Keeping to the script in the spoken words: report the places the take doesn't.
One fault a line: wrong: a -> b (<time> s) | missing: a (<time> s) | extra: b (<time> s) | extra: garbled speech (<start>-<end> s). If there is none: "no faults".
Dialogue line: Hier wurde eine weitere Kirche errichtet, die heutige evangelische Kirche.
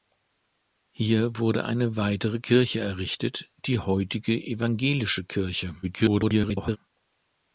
extra: garbled speech (5.8-6.8 s)